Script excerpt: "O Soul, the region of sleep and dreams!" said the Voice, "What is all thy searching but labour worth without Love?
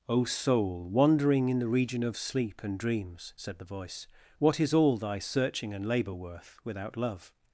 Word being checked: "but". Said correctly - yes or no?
no